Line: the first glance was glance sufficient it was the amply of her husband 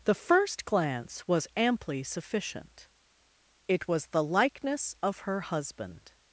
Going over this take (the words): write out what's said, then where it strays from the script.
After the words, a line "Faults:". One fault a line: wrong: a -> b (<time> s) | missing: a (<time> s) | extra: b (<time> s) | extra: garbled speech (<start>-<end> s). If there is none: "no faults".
the first glance was amply sufficient it was the likeness of her husband
Faults:
wrong: glance -> amply (1.6 s)
wrong: amply -> likeness (4.2 s)